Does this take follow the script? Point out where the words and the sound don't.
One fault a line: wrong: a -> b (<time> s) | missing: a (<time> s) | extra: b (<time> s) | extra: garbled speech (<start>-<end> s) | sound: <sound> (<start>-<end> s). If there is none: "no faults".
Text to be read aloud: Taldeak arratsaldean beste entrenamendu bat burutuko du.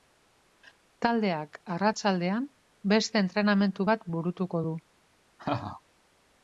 sound: laugh (5.4-5.8 s)